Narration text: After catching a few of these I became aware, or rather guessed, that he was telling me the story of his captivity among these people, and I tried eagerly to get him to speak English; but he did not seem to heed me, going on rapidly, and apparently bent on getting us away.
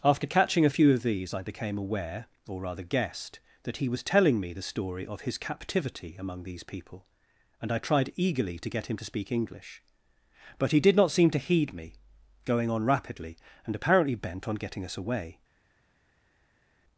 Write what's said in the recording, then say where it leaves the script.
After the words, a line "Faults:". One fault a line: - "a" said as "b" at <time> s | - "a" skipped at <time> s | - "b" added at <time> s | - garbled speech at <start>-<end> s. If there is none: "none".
After catching a few of these I became aware, or rather guessed, that he was telling me the story of his captivity among these people, and I tried eagerly to get him to speak English; but he did not seem to heed me, going on rapidly, and apparently bent on getting us away.
Faults:
none